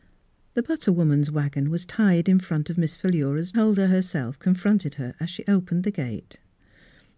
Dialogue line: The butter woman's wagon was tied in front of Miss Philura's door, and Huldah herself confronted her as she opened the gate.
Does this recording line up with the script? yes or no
no